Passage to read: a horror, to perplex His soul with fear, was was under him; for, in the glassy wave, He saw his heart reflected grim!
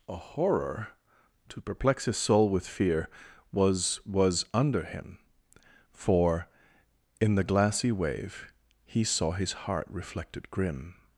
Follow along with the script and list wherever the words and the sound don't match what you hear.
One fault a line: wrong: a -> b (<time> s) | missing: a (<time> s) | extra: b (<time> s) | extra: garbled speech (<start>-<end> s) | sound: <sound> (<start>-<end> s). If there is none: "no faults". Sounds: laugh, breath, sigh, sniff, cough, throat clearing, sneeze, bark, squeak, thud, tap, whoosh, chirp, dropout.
no faults